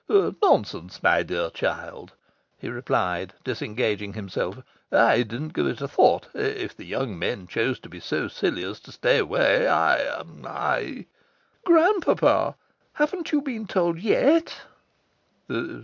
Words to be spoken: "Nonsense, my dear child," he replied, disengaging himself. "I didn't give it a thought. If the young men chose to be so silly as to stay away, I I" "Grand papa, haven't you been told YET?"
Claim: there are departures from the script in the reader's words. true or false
false